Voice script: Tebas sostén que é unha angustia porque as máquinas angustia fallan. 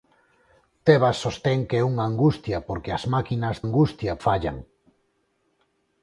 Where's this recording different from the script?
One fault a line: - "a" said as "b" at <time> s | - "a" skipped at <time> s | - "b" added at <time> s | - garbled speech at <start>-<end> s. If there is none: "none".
none